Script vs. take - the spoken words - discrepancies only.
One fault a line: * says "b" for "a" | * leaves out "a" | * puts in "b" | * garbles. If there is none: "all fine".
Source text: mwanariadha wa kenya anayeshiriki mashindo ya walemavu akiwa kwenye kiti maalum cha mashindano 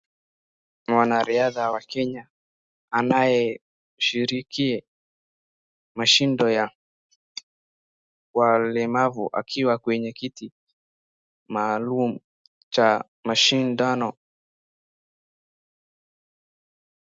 all fine